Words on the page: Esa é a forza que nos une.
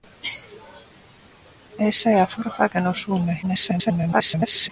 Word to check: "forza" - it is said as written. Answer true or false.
true